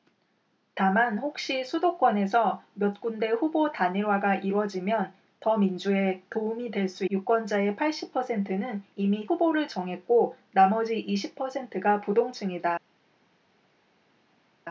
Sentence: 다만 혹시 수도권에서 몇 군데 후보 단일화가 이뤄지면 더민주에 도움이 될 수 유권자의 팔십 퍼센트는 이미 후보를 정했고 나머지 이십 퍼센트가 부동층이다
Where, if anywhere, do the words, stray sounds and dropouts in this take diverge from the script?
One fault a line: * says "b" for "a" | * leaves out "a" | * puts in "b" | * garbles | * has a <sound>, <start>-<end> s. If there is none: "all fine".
all fine